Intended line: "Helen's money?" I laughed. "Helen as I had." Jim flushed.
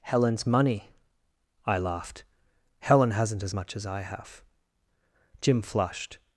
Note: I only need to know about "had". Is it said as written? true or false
false